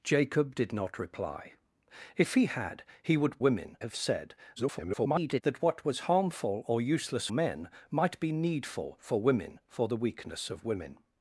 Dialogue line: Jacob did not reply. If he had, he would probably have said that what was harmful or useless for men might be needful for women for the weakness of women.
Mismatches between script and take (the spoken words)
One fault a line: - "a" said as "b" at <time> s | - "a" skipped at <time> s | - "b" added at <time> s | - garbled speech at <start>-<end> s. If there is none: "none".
- "probably" said as "women" at 3.4 s
- garbled speech at 4.6-5.4 s
- "for" skipped at 7.3 s